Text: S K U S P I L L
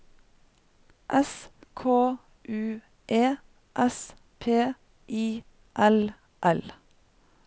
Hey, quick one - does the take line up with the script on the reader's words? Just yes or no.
no